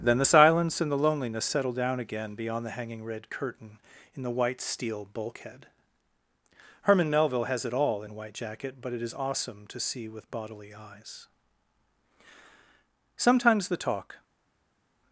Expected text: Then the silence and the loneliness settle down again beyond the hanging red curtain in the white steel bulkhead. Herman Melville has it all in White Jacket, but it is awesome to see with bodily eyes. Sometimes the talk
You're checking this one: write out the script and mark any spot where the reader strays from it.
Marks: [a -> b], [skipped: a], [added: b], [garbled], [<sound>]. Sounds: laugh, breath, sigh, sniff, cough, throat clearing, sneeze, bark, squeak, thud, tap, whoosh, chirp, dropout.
Then the silence and the loneliness settle down again beyond the hanging red curtain in the white steel bulkhead. Herman Melville has it all in White Jacket, but it is awesome to see with bodily eyes. Sometimes the talk